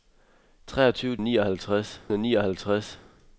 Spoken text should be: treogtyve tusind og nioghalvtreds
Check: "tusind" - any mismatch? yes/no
yes